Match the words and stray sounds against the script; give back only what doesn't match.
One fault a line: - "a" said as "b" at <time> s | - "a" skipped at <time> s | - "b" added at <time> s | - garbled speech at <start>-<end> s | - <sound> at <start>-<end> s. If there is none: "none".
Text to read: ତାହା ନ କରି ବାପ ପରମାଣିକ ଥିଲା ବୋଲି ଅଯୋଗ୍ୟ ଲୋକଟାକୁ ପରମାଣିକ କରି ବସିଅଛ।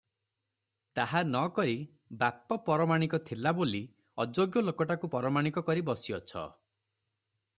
none